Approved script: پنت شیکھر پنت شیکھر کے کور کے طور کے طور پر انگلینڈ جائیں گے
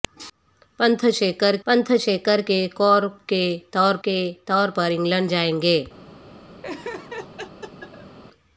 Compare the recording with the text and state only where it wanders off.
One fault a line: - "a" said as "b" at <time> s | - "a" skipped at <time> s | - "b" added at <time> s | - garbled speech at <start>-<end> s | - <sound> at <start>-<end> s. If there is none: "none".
- laugh at 6.6-8.2 s